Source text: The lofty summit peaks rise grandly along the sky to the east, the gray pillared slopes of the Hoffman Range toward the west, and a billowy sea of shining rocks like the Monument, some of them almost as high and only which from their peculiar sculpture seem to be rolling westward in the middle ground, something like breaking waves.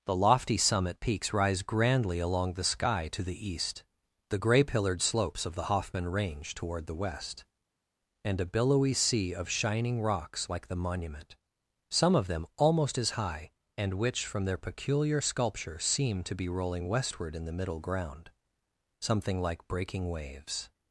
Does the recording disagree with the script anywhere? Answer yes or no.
yes